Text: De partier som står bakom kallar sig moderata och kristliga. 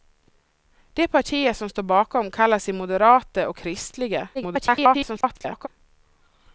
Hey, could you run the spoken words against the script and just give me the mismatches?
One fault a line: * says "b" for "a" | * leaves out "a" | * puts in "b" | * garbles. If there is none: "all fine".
* garbles